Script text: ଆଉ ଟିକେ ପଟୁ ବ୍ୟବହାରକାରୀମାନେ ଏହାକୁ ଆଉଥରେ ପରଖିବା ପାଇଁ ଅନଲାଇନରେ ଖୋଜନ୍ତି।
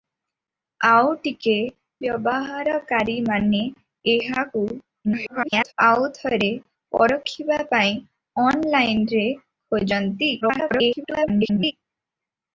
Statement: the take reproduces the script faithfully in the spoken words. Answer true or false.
false